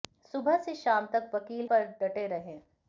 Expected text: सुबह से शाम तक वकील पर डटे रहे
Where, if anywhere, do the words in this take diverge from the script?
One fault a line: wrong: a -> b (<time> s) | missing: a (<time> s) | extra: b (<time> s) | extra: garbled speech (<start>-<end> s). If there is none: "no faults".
no faults